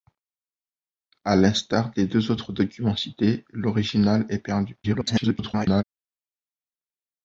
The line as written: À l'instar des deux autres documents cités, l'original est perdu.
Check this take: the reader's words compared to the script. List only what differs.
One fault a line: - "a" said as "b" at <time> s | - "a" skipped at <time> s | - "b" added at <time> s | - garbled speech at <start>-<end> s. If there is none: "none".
- garbled speech at 4.8-5.8 s